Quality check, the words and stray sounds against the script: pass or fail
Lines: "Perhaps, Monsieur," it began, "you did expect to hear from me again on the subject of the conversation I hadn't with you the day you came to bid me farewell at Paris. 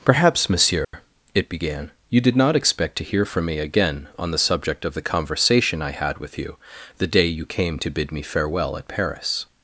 fail